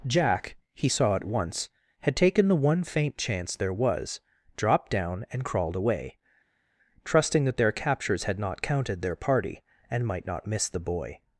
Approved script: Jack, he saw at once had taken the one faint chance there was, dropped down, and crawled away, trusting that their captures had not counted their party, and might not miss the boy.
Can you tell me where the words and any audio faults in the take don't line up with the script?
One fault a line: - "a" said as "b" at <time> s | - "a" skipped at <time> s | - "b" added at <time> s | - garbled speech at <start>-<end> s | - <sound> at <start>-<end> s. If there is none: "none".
none